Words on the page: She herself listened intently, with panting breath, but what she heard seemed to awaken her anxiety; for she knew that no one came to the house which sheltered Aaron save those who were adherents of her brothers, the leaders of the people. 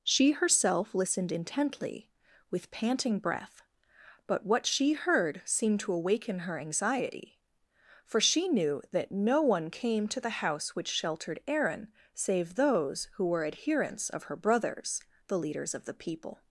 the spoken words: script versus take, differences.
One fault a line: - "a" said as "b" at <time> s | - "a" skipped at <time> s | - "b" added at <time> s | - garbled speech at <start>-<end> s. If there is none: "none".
none